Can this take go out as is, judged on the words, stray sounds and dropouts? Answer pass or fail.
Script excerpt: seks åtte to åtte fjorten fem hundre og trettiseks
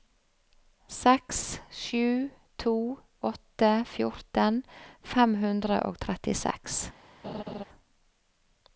fail